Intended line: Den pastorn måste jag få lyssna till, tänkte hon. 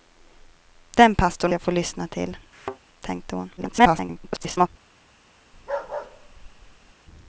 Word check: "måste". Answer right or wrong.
wrong